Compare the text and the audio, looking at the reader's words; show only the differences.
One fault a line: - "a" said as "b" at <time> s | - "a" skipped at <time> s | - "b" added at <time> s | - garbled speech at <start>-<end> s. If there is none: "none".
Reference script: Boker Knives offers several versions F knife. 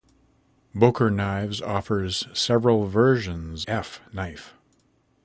none